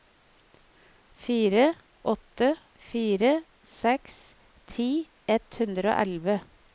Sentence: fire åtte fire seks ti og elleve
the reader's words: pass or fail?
fail